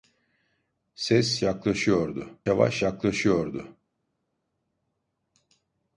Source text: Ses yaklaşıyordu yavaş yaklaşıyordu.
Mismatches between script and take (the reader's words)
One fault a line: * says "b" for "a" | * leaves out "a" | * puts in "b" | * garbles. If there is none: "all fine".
all fine